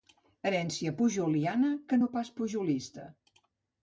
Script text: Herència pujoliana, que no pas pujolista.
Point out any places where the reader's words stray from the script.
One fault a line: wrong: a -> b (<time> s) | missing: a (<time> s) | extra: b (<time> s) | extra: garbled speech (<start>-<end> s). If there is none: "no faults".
no faults